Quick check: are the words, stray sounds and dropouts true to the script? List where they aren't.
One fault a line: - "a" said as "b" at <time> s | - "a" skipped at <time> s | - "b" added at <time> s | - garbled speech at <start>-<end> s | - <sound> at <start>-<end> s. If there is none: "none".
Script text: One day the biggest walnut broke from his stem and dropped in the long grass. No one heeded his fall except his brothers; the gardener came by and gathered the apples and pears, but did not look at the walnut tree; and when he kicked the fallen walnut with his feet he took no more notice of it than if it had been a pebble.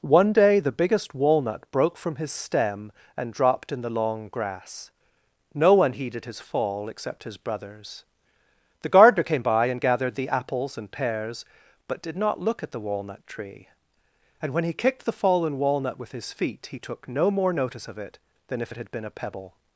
none